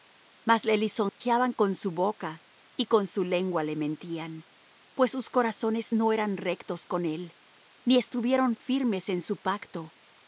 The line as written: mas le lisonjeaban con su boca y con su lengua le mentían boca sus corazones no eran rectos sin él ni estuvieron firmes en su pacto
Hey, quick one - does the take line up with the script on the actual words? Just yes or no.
no